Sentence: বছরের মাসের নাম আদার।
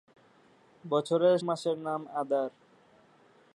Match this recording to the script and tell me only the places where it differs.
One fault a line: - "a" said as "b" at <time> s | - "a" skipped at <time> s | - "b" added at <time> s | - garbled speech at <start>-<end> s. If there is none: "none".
none